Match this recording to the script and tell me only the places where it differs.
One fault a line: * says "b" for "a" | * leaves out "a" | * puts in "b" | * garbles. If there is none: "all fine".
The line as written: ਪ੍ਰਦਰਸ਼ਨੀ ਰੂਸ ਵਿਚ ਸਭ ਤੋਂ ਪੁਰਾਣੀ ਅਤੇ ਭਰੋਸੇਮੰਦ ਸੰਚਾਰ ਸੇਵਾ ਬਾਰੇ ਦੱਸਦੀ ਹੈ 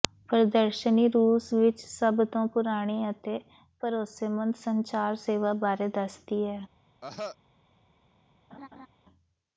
all fine